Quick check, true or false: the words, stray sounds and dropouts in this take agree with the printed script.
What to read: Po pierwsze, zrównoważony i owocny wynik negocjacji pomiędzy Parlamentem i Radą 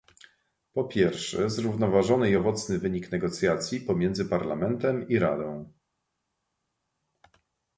true